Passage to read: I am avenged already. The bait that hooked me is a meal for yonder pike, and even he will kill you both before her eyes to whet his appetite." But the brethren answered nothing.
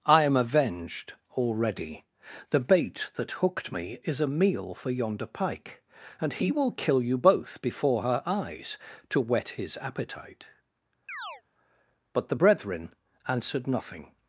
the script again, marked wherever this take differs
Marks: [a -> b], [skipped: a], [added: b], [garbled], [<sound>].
I am avenged already. The bait that hooked me is a meal for yonder pike, and [skipped: even] he will kill you both before her eyes to whet his appetite." [chirp] But the brethren answered nothing.